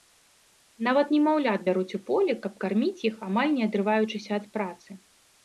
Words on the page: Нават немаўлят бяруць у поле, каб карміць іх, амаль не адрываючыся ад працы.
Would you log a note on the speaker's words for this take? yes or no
no